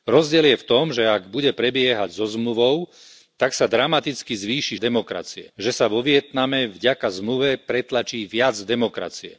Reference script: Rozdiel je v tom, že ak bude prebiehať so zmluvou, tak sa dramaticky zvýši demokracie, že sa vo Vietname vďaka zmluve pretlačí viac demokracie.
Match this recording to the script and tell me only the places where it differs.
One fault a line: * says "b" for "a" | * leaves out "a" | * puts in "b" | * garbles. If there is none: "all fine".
all fine